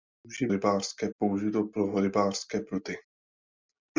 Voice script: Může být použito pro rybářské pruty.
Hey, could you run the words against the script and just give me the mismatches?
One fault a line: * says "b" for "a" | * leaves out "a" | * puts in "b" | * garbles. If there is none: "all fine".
* says "rybářské" for "být"